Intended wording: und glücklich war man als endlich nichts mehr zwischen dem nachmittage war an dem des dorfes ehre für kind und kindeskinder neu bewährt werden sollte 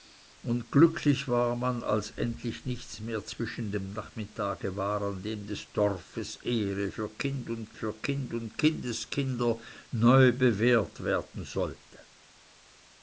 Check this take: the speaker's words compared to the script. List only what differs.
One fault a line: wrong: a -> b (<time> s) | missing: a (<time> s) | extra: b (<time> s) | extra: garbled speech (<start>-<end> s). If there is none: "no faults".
extra: für kind und (7.7 s)